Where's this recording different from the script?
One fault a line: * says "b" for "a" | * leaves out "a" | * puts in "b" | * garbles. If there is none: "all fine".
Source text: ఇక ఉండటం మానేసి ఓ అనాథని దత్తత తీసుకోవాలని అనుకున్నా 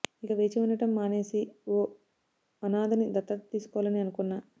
* puts in "వేచి"